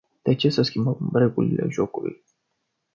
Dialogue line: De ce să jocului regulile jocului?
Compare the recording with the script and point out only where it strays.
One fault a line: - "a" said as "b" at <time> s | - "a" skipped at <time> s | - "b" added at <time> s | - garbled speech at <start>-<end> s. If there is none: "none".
- "jocului" said as "schimbăm" at 0.6 s